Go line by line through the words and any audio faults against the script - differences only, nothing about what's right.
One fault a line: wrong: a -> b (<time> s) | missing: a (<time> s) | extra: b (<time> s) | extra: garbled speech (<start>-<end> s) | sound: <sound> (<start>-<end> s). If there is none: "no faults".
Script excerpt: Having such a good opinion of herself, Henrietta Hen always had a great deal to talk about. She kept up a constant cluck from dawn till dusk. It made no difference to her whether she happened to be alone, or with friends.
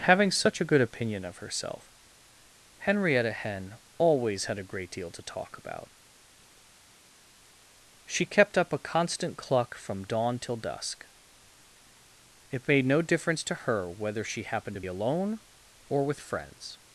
missing: be (14.8 s)